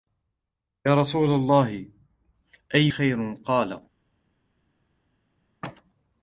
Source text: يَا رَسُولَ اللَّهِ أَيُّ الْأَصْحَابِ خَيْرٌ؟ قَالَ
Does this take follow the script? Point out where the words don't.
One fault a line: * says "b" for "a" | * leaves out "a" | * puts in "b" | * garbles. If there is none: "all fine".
* leaves out "الْأَصْحَابِ"